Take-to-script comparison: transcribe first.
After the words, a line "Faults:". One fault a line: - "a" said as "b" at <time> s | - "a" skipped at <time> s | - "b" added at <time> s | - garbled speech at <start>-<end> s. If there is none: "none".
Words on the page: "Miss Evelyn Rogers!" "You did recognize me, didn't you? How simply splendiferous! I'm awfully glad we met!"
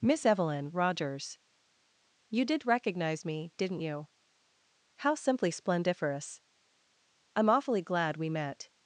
"Miss Evelyn Rogers!" "You did recognize me, didn't you? How simply splendiferous! I'm awfully glad we met!"
Faults:
none